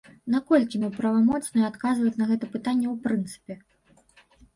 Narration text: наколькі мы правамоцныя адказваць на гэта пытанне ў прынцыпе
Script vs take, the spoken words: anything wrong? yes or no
no